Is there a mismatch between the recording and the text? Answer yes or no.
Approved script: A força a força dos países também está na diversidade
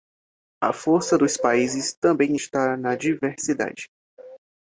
yes